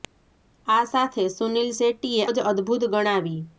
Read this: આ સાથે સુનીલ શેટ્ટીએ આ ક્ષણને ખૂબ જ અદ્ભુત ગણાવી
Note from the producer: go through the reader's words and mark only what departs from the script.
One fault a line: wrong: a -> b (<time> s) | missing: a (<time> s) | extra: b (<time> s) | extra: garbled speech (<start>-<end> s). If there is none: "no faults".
missing: આ ક્ષણને ખૂબ (2.2 s)